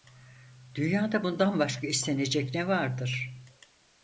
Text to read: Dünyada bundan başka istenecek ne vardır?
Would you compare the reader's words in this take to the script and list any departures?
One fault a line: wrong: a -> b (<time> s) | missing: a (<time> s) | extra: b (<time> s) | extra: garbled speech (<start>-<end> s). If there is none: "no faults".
no faults